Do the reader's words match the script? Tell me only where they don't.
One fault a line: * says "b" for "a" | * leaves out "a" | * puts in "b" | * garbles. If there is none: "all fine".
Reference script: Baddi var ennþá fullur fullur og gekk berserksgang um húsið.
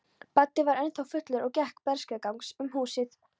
* leaves out "fullur"